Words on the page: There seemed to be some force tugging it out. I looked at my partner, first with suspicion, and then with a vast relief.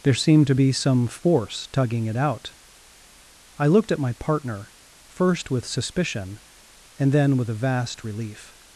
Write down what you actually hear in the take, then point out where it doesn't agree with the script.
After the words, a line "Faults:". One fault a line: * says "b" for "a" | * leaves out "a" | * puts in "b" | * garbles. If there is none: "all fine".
There seemed to be some force tugging it out. I looked at my partner, first with suspicion, and then with a vast relief.
Faults:
all fine